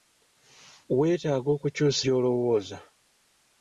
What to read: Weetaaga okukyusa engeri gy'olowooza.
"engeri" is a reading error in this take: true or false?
true